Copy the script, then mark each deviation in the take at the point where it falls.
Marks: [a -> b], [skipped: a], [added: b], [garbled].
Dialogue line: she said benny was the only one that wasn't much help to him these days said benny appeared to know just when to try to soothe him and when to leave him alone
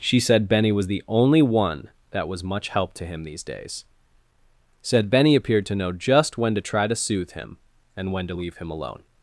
she said benny was the only one that [wasn't -> was] much help to him these days said benny appeared to know just when to try to soothe him and when to leave him alone